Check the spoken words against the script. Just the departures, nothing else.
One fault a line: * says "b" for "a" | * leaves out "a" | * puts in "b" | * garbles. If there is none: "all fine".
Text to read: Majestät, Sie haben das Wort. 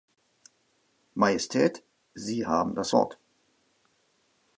all fine